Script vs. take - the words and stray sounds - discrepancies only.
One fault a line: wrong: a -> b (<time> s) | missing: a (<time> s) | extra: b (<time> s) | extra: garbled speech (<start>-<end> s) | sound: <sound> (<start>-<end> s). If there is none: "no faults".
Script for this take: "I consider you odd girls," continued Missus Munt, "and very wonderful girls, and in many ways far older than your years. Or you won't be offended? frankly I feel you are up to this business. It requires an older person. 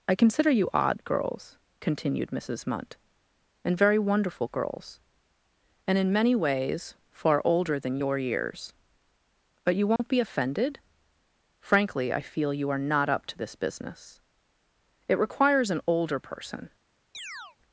wrong: Or -> But (9.6 s)
sound: dropout (10.0-10.0 s)
extra: not (12.8 s)
sound: chirp (17.1-17.6 s)